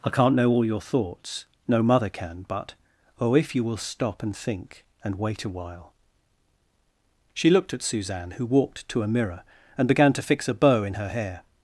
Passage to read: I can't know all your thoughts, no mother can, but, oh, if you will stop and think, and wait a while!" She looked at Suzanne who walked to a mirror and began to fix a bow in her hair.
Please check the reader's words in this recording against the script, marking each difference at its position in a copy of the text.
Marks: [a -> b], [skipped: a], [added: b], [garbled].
I can't know all your thoughts, no mother can, but, oh, if you will stop and think, and wait a while!" She looked at Suzanne who walked to a mirror and began to fix a bow in her hair.